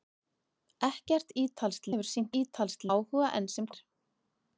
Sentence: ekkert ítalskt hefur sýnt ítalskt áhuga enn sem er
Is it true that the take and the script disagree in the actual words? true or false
false